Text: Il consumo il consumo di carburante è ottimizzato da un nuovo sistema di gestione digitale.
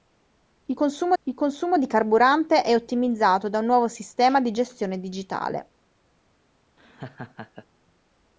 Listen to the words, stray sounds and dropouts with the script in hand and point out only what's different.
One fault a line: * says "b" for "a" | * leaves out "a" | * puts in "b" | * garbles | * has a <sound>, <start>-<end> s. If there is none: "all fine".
* has a laugh, 6.8-7.7 s